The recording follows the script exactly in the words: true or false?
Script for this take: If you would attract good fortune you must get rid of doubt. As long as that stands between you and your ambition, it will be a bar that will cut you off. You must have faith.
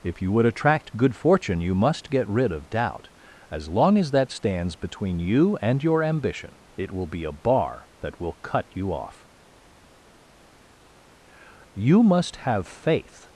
true